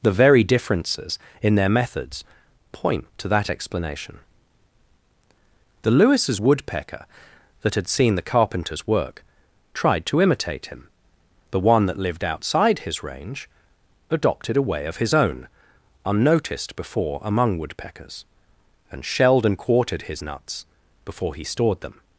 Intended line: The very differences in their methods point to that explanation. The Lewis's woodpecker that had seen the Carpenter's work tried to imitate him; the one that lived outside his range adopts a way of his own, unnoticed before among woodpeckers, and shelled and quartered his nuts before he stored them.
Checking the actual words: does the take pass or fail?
fail